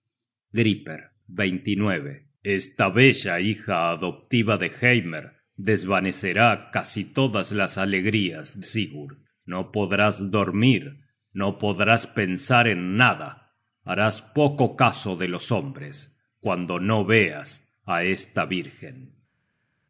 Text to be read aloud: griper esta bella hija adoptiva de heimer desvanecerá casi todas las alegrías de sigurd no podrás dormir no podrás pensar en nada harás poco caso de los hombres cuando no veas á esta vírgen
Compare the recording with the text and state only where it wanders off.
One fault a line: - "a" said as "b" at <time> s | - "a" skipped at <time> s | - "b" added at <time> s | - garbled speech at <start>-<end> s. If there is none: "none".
- "de" skipped at 8.6 s